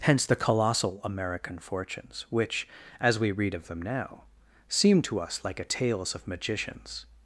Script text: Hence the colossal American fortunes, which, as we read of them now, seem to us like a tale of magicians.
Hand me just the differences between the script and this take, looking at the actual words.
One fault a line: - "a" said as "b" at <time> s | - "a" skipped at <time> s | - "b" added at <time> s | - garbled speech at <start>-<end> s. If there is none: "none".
- "tale" said as "tales" at 5.7 s